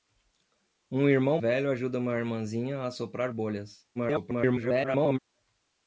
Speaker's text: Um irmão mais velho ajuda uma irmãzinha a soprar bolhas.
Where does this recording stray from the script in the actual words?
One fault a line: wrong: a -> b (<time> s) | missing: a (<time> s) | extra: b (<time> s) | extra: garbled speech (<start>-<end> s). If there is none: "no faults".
missing: mais (1.4 s)
extra: garbled speech (3.9-5.2 s)